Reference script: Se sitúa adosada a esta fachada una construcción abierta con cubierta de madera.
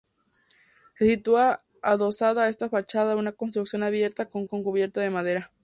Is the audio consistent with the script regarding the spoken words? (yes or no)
no